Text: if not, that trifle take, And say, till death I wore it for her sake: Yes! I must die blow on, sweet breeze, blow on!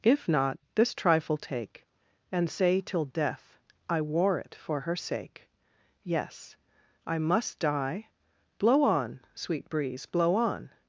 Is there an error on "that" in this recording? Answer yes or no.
yes